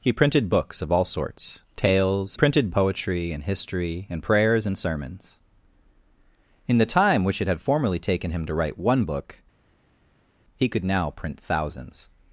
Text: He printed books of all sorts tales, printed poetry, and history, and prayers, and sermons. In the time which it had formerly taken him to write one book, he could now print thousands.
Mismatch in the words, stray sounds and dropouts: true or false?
false